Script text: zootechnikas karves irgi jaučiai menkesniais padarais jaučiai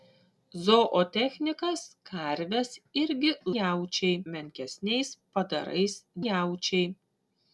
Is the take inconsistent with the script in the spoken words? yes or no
no